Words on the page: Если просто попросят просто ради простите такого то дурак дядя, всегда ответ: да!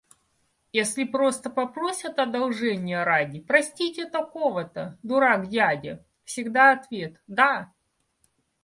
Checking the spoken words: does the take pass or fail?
fail